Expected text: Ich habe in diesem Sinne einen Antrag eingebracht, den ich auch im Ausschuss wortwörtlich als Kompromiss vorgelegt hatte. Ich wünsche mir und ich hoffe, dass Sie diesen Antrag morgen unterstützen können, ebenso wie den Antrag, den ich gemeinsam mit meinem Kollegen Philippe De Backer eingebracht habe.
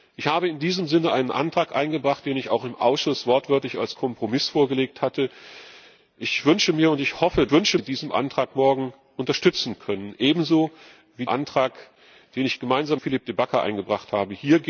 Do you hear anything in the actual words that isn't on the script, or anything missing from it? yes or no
yes